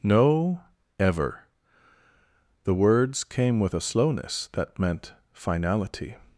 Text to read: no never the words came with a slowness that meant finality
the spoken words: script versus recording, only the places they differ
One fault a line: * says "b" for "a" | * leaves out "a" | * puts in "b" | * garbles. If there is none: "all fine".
* says "ever" for "never"